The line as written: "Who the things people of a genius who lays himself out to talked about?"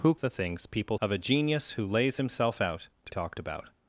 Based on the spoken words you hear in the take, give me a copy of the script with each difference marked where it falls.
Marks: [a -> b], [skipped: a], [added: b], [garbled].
"Who the things people of a genius who lays himself out to talked about?"